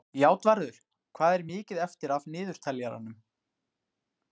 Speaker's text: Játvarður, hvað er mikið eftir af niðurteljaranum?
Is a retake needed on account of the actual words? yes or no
no